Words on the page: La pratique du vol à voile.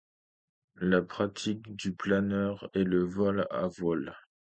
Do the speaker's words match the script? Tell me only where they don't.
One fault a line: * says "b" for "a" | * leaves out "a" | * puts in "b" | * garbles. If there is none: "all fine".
* puts in "planeur est le"